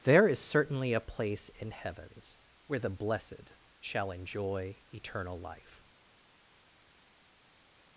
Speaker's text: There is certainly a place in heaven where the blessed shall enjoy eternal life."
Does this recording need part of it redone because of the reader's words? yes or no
yes